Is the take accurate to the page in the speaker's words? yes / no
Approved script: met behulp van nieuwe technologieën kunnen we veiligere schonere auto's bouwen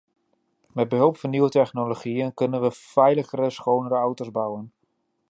yes